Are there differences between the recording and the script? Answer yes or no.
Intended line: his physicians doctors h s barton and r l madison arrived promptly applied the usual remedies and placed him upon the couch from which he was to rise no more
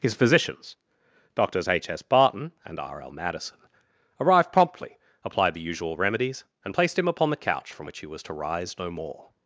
no